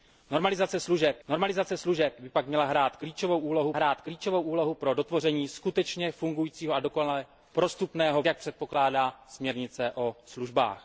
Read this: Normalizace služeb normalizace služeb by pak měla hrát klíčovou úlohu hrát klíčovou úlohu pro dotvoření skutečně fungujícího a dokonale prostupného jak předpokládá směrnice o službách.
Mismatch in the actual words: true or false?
false